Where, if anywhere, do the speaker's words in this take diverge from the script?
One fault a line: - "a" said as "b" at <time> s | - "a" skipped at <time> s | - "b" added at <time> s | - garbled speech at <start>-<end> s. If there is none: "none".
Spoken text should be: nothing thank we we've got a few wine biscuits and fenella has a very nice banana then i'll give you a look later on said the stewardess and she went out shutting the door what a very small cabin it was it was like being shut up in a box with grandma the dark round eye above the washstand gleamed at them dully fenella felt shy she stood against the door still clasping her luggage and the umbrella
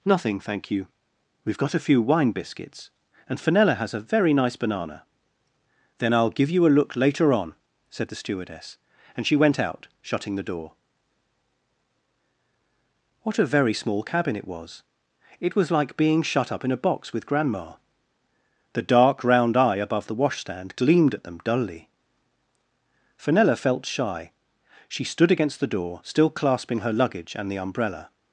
- "we" said as "you" at 0.7 s